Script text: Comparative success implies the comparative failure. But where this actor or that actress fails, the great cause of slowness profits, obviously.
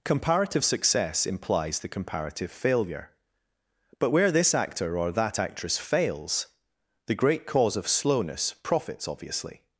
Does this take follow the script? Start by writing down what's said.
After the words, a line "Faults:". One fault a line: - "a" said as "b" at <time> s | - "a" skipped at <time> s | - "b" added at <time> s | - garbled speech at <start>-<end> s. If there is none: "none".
Comparative success implies the comparative failure. But where this actor or that actress fails, the great cause of slowness profits, obviously.
Faults:
none